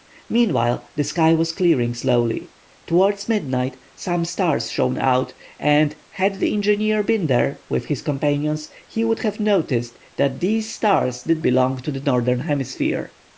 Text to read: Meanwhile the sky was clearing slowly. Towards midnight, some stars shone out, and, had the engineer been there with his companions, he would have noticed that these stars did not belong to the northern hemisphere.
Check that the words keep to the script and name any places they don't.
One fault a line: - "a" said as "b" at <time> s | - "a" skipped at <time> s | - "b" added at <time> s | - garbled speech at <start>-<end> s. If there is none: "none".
- "not" skipped at 11.4 s